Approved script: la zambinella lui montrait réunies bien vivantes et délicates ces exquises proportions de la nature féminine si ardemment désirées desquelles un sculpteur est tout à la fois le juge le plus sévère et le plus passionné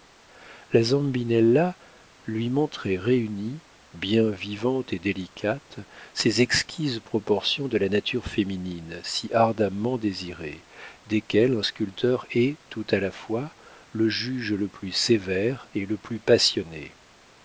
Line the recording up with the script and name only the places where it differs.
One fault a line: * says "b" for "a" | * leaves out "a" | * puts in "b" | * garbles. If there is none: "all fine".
all fine